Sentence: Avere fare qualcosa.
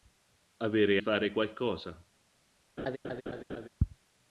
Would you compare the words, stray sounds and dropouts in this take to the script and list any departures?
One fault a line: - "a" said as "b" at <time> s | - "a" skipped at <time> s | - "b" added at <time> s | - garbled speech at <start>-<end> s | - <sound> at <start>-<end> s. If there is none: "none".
- laugh at 2.8-3.7 s